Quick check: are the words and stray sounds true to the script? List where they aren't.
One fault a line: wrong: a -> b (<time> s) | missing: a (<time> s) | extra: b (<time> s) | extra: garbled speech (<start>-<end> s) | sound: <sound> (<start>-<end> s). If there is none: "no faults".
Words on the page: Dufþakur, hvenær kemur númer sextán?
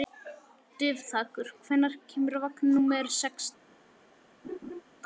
extra: vagn (2.5 s)
sound: laugh (4.4-4.8 s)